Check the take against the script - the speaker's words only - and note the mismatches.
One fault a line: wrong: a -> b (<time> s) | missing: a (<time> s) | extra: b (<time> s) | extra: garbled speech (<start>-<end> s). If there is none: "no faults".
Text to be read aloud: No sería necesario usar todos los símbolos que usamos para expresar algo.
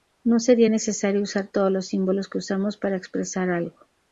no faults